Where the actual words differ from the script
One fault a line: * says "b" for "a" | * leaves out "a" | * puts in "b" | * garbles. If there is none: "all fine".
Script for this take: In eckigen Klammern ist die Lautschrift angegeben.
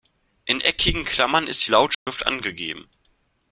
all fine